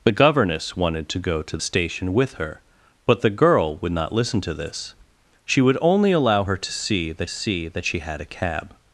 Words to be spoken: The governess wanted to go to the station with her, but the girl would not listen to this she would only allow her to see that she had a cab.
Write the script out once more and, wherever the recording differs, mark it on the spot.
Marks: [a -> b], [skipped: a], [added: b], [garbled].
The governess wanted to go to [skipped: the] station with her, but the girl would not listen to this she would only allow her to see that [added: see that] she had a cab.